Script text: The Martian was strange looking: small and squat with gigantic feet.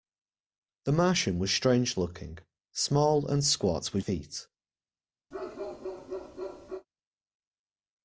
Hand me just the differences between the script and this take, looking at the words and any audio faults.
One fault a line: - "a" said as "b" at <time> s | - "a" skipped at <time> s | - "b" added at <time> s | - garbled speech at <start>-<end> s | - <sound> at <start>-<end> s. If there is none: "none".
- "gigantic" skipped at 4.0 s
- bark at 5.3-6.9 s